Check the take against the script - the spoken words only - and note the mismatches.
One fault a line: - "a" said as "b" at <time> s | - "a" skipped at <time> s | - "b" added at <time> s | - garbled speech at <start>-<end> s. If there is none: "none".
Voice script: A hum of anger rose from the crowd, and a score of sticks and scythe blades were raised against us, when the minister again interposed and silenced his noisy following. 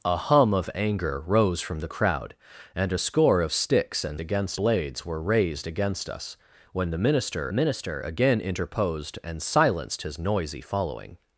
- "scythe" said as "against" at 4.2 s
- "minister" added at 7.5 s